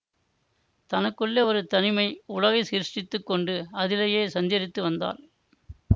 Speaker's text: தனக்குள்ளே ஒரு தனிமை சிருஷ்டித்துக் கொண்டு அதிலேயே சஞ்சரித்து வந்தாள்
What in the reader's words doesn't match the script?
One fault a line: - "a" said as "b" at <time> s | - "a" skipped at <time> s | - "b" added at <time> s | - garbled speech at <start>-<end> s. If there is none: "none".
- "உலகை" added at 2.3 s